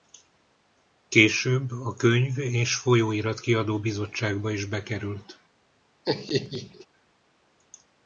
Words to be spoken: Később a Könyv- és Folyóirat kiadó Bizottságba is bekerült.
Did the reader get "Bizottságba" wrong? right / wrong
right